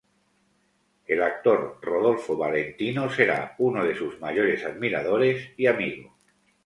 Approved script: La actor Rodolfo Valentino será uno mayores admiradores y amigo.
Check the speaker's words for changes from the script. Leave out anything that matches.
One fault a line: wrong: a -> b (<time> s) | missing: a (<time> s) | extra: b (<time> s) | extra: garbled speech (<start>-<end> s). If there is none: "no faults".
wrong: La -> El (1.1 s)
extra: de sus (3.8 s)